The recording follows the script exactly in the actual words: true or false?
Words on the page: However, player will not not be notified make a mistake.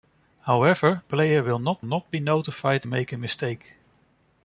true